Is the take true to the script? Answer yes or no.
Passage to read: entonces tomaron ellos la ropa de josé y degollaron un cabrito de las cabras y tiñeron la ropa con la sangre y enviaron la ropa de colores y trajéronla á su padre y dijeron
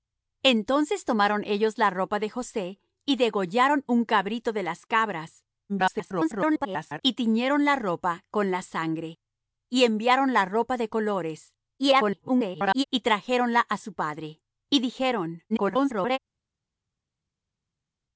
no